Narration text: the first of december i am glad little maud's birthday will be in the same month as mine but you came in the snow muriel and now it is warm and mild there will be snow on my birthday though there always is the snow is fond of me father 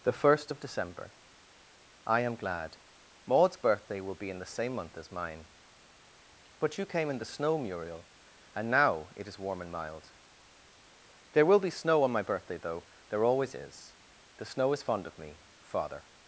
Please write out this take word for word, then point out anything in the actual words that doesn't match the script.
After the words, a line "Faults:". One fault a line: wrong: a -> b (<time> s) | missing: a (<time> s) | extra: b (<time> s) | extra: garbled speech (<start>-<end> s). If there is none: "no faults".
the first of december i am glad maud's birthday will be in the same month as mine but you came in the snow muriel and now it is warm and mild there will be snow on my birthday though there always is the snow is fond of me father
Faults:
missing: little (2.8 s)